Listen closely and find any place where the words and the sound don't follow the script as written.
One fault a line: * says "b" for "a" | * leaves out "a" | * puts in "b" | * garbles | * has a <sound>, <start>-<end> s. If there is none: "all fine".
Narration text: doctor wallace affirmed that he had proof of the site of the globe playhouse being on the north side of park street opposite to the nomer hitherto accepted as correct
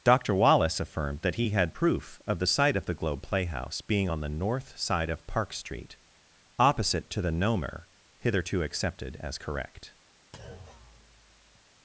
* has a thud, 10.3-11.7 s